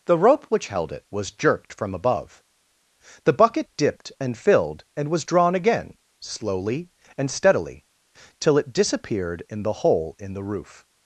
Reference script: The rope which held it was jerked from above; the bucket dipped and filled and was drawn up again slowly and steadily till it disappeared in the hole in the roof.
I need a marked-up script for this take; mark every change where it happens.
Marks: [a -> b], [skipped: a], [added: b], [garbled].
The rope which held it was jerked from above; the bucket dipped and filled and was drawn [skipped: up] again slowly and steadily till it disappeared in the hole in the roof.